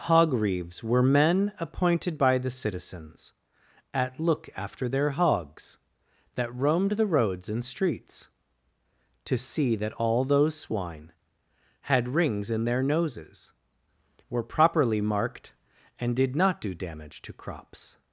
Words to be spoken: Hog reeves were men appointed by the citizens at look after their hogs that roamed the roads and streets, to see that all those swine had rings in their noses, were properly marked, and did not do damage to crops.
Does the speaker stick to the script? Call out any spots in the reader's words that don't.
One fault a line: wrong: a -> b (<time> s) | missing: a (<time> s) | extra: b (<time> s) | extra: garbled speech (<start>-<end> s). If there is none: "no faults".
no faults